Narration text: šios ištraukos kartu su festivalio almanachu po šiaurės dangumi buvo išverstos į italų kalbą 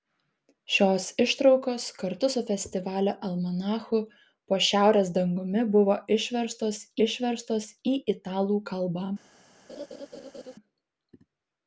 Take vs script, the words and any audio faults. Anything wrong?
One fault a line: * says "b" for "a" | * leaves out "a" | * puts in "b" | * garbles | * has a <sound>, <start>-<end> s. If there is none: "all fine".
* puts in "išverstos"
* has a laugh, 9.7-10.5 s